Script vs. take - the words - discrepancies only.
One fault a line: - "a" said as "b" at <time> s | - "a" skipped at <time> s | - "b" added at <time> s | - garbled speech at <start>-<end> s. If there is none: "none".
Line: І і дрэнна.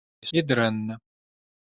none